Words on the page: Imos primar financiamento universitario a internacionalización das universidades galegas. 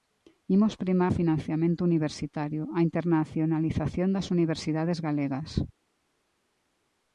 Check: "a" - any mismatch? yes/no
no